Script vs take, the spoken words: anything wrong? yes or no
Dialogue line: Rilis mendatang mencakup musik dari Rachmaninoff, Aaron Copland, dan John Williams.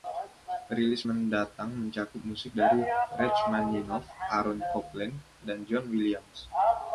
no